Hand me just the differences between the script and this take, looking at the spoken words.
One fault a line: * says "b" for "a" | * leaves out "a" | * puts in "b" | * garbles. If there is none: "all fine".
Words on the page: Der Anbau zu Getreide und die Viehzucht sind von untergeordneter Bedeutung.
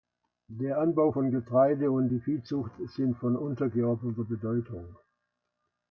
* says "von" for "zu"